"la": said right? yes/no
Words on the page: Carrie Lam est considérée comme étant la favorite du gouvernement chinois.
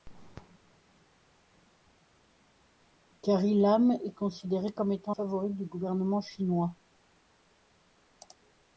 no